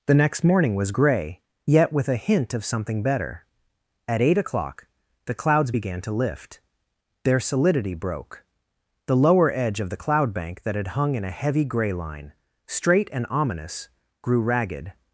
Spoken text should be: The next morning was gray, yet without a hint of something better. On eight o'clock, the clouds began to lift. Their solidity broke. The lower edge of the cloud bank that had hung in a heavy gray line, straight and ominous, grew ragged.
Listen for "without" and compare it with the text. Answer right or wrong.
wrong